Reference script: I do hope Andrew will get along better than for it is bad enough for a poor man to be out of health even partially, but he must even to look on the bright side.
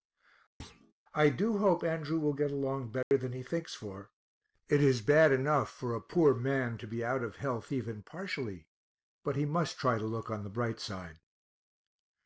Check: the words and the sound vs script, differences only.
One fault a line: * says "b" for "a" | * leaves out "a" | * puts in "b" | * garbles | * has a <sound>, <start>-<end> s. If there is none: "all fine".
* has a thud, 0.6-0.9 s
* has a dropout, 3.0-3.1 s
* puts in "he thinks"
* says "try" for "even"